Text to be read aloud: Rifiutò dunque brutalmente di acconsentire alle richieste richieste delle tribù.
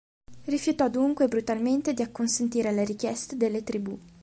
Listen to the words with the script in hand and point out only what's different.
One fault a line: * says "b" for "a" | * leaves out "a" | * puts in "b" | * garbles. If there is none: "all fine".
* leaves out "richieste"